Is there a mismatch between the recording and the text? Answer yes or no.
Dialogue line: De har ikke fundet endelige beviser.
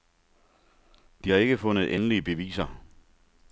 no